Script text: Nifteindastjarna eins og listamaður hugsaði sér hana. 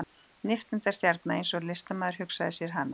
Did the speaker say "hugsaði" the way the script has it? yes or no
yes